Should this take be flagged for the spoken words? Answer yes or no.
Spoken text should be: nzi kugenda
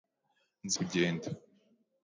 no